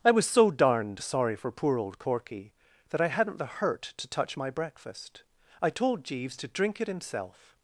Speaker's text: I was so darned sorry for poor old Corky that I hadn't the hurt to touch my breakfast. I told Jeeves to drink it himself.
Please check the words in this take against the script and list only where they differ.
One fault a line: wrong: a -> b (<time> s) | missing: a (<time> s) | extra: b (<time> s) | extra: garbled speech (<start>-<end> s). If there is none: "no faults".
no faults